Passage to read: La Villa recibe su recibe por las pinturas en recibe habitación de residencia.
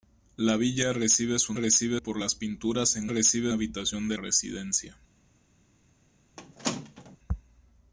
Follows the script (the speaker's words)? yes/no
yes